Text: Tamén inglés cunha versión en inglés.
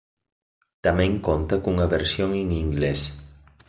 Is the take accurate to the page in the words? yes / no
no